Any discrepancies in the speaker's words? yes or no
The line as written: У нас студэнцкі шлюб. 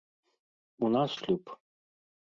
yes